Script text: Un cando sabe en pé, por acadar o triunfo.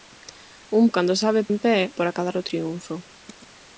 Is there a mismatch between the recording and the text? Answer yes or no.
no